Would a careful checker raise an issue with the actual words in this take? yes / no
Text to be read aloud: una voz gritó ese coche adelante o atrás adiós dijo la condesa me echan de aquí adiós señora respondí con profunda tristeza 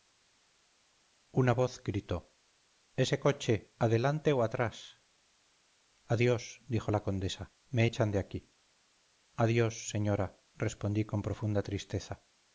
no